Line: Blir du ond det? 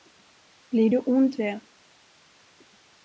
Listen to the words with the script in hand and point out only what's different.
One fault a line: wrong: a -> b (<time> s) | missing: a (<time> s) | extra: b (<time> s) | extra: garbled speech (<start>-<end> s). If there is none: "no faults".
no faults